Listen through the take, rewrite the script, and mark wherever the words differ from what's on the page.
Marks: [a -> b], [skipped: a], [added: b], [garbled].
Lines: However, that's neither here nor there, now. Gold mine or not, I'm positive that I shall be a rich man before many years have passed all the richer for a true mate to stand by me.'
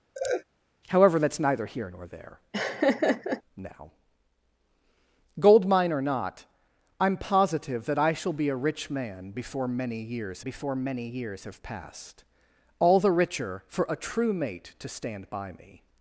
However, that's neither here nor there, now. Gold mine or not, I'm positive that I shall be a rich man before many years [added: before many years] have passed all the richer for a true mate to stand by me.'